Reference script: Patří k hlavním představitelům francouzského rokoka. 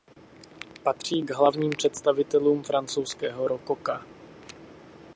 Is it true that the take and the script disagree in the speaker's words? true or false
false